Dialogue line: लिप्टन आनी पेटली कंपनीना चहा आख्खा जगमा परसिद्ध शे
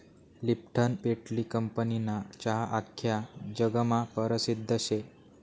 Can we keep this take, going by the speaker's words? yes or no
no